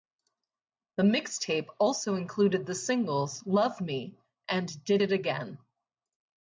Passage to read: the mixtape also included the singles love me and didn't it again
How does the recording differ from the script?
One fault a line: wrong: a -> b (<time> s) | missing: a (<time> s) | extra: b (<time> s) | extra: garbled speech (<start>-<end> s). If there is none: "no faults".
wrong: didn't -> did (4.8 s)